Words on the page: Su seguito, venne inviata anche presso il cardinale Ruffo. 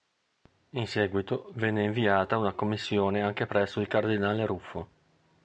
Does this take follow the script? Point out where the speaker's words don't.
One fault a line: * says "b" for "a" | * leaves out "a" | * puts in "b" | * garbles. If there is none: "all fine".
* says "In" for "Su"
* puts in "una commissione"